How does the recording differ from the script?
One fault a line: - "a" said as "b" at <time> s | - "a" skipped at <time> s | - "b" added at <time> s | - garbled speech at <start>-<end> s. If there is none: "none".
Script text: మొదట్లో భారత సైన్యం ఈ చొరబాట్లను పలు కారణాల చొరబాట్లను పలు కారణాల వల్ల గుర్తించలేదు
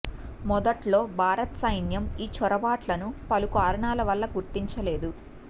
- "చొరబాట్లను పలు కారణాల" skipped at 4.0 s